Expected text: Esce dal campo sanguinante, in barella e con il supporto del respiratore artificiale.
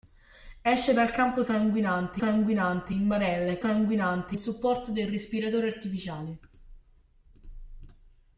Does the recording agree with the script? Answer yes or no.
no